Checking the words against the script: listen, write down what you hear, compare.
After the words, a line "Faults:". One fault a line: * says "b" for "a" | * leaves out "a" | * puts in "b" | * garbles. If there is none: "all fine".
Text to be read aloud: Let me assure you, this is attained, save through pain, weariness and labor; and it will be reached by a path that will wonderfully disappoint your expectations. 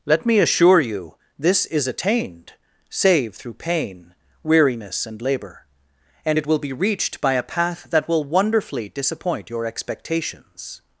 Let me assure you, this is attained, save through pain, weariness and labor; and it will be reached by a path that will wonderfully disappoint your expectations.
Faults:
all fine